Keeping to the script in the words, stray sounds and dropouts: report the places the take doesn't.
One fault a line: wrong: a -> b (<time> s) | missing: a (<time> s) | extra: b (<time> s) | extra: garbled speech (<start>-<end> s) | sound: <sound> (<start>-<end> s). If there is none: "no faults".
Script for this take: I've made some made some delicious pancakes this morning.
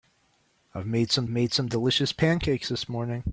no faults